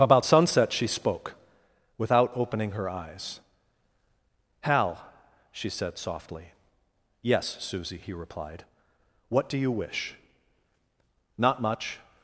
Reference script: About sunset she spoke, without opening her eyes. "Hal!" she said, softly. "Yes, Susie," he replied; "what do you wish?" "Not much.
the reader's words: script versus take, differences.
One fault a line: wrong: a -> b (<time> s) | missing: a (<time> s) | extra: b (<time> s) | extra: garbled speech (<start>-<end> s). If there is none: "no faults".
no faults